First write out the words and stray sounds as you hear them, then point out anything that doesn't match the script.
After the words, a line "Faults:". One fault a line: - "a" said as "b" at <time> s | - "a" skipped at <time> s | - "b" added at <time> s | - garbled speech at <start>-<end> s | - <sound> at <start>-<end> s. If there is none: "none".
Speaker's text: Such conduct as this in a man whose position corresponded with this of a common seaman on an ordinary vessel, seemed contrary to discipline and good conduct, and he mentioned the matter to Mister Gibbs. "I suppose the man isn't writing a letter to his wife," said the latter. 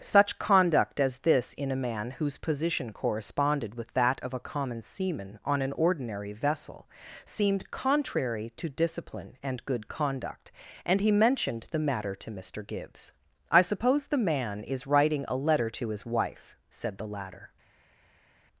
Such conduct as this in a man whose position corresponded with that of a common seaman on an ordinary vessel, seemed contrary to discipline and good conduct, and he mentioned the matter to Mister Gibbs. "I suppose the man is writing a letter to his wife," said the latter.
Faults:
- "this" said as "that" at 3.9 s
- "isn't" said as "is" at 14.6 s